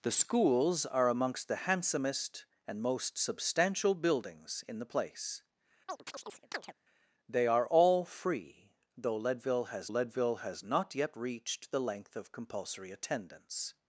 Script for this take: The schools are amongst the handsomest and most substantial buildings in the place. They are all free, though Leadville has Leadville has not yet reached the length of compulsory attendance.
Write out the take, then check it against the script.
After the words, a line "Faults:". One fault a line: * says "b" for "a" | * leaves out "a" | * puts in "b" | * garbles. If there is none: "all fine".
The schools are amongst the handsomest and most substantial buildings in the place. They are all free, though Leadville has Leadville has not yet reached the length of compulsory attendance.
Faults:
all fine